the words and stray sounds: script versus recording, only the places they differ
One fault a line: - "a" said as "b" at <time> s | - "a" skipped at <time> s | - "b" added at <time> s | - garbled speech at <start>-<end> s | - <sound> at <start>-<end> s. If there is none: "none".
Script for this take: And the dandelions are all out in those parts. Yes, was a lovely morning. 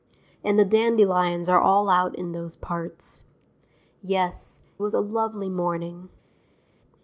none